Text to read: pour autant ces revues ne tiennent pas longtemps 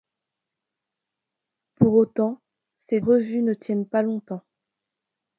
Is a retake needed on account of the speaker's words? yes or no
no